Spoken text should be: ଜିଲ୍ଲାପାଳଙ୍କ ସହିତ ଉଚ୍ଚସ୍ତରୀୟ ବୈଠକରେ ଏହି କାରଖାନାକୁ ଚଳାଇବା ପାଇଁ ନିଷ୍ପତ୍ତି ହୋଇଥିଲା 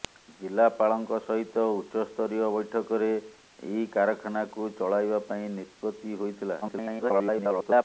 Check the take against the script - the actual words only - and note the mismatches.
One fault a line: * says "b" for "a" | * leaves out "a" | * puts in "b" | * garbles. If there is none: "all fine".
* garbles